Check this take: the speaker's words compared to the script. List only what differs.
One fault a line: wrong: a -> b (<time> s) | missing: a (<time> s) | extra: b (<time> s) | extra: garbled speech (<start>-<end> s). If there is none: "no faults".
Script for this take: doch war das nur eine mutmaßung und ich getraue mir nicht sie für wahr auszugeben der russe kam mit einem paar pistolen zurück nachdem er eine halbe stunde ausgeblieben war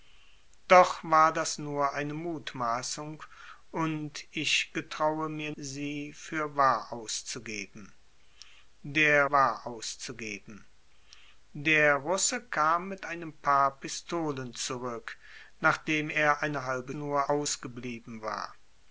missing: nicht (5.5 s)
extra: wahr auszugeben der (9.3 s)
wrong: stunde -> nur (16.9 s)